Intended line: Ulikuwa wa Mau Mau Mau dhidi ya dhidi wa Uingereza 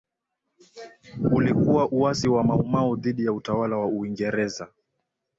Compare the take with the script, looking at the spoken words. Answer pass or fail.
fail